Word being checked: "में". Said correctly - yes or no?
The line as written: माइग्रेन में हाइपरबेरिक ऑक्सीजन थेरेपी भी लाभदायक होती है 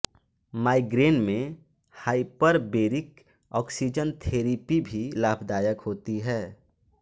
yes